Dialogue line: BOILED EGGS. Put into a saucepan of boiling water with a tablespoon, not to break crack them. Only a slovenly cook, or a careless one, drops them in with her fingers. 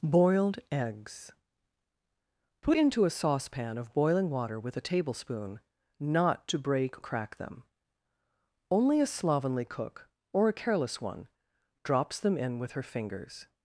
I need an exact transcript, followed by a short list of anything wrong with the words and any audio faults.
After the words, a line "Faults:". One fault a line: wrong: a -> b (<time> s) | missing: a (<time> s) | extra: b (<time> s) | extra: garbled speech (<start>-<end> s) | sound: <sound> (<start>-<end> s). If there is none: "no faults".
BOILED EGGS. Put into a saucepan of boiling water with a tablespoon, not to break crack them. Only a slovenly cook, or a careless one, drops them in with her fingers.
Faults:
no faults